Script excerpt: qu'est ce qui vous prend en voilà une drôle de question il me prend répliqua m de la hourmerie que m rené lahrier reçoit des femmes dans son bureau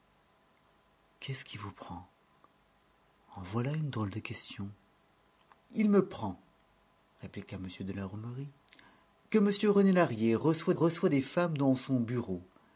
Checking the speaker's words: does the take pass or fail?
fail